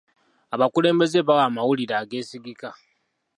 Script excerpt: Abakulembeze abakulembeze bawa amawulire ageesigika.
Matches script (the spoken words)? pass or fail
fail